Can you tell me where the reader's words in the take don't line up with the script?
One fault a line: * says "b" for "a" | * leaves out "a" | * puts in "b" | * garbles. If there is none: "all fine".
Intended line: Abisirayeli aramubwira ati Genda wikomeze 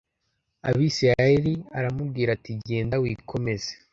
all fine